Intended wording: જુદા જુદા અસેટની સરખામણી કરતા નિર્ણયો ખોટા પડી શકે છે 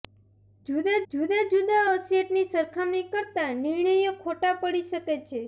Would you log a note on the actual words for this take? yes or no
yes